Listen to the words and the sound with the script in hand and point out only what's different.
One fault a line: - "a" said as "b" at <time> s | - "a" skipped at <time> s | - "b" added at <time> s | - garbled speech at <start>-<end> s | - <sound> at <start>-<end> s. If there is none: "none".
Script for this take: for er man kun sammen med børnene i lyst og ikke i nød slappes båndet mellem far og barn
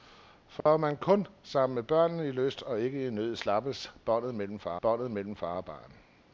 - dropout at 0.6-0.7 s
- "båndet mellem far" added at 4.8 s